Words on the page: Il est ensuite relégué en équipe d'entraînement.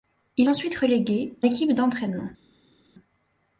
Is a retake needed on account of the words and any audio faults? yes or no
yes